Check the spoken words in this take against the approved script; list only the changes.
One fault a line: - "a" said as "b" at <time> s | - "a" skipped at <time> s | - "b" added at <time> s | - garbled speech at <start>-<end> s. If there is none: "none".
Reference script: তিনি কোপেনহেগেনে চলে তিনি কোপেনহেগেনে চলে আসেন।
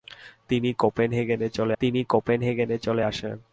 none